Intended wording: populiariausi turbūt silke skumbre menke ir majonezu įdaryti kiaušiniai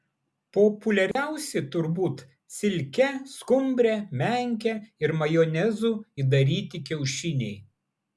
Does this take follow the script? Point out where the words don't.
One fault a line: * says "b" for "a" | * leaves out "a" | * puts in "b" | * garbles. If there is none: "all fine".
all fine